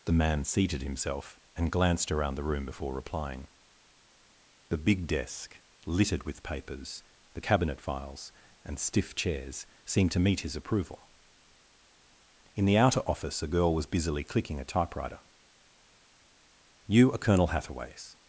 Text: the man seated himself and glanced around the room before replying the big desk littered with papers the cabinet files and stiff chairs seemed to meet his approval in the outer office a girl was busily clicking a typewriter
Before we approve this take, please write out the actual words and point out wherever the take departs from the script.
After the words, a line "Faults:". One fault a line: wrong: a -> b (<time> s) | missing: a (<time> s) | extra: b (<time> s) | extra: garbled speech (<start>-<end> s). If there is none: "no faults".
the man seated himself and glanced around the room before replying the big desk littered with papers the cabinet files and stiff chairs seemed to meet his approval in the outer office a girl was busily clicking a typewriter you are colonel hathaway's
Faults:
extra: you are colonel hathaway's (16.9 s)